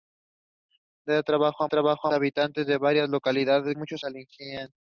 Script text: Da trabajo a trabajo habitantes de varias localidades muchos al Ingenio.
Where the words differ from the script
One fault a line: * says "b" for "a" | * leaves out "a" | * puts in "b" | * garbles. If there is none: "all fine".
all fine